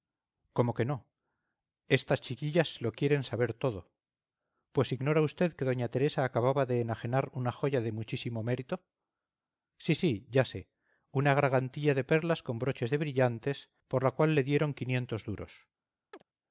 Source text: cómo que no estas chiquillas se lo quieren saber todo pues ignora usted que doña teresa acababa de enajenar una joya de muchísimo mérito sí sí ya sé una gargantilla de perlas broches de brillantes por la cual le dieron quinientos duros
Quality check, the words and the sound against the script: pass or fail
fail